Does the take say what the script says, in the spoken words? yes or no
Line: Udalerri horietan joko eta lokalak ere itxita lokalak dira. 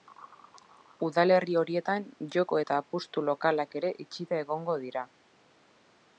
no